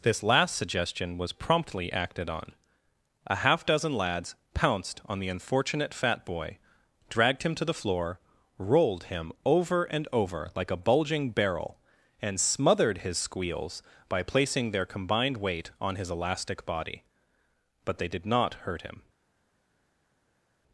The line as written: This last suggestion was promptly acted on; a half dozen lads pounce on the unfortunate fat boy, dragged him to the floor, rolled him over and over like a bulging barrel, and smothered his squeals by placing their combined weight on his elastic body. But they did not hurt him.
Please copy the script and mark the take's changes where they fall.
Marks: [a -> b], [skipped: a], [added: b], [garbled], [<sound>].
This last suggestion was promptly acted on; a half dozen lads [pounce -> pounced] on the unfortunate fat boy, dragged him to the floor, rolled him over and over like a bulging barrel, and smothered his squeals by placing their combined weight on his elastic body. But they did not hurt him.